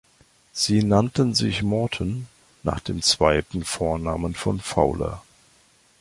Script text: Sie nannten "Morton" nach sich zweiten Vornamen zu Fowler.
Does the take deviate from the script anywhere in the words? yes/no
yes